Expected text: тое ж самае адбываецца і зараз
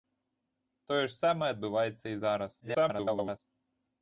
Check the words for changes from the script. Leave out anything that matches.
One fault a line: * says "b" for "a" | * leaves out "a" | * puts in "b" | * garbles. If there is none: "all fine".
* garbles